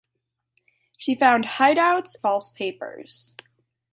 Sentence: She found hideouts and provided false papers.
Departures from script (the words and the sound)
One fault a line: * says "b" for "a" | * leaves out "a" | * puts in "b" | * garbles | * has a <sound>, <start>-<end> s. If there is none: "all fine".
* leaves out "and provided"